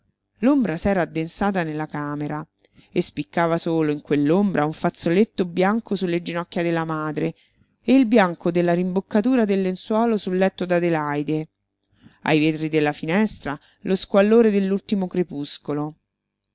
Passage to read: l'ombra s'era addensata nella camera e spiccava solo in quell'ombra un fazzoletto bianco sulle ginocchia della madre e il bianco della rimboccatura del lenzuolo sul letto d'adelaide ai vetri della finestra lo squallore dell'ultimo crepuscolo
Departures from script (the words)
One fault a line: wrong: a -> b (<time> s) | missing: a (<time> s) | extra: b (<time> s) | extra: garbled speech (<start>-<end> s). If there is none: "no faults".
no faults